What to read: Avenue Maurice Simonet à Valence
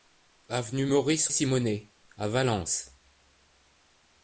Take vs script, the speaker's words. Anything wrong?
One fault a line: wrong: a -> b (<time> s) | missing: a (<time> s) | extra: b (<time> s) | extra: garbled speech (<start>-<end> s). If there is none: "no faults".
no faults